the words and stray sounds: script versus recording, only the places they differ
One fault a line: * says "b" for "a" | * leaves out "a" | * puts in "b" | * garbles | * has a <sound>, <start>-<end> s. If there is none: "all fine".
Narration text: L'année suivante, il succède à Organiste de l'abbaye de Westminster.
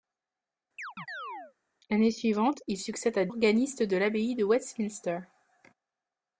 * has a chirp, 0.8-1.5 s